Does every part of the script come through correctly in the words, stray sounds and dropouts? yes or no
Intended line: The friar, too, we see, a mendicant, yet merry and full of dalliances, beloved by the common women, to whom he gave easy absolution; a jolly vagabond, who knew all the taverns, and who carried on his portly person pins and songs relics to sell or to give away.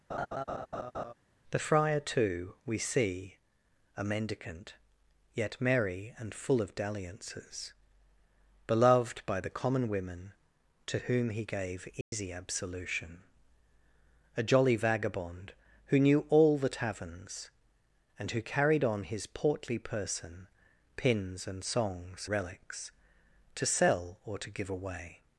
no